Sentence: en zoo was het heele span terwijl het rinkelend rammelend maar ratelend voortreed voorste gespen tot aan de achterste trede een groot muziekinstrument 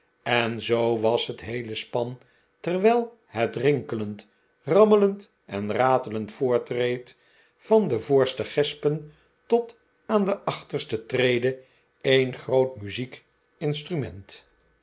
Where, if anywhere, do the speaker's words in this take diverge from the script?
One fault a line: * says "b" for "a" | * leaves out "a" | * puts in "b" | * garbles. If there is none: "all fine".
* says "en" for "maar"
* puts in "van de"